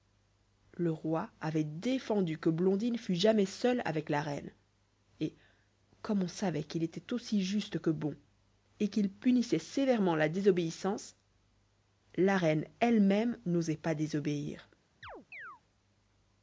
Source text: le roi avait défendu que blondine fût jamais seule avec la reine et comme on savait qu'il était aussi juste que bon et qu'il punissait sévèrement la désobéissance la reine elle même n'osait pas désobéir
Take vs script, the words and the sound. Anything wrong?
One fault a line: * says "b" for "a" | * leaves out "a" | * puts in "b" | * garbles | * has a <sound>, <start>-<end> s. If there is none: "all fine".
* has a chirp, 15.0-15.6 s